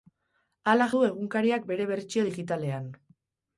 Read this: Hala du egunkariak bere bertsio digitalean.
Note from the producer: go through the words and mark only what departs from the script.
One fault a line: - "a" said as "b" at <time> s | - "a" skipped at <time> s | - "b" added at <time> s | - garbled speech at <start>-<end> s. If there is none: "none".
none